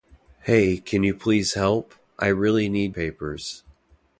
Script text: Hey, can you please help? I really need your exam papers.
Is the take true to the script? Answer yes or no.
no